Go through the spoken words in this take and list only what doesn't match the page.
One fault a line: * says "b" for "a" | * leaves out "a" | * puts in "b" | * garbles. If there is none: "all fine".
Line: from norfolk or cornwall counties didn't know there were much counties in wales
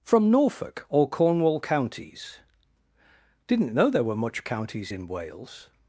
all fine